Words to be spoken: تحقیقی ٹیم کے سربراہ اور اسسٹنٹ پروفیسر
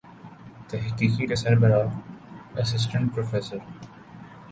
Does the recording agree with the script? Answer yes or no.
no